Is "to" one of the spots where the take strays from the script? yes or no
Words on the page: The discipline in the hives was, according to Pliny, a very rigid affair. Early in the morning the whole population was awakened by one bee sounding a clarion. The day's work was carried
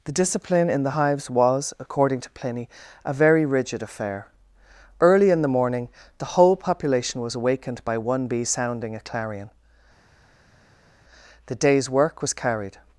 no